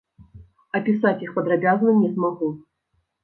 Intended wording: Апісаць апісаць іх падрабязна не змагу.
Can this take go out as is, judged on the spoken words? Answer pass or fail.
fail